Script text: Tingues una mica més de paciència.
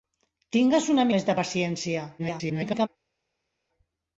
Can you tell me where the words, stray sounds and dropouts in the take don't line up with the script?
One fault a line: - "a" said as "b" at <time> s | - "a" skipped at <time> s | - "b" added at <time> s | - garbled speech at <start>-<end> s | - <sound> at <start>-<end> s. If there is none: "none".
- "mica" skipped at 1.1 s
- garbled speech at 2.2-2.9 s